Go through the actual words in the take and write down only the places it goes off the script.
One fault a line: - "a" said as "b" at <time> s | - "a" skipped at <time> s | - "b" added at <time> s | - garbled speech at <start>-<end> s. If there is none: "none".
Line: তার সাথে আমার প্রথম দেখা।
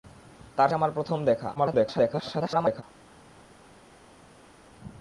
- "সাথে" skipped at 0.7 s
- garbled speech at 1.5-2.8 s